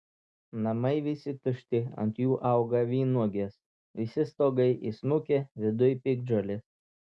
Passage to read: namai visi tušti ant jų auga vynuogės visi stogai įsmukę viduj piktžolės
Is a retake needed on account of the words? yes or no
no